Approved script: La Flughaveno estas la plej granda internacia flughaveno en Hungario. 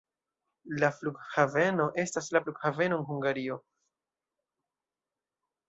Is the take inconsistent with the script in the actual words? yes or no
yes